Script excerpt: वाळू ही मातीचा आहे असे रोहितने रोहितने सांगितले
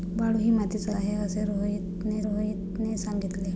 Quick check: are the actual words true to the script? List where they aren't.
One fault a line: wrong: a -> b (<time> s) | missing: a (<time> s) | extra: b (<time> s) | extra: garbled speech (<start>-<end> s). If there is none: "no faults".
no faults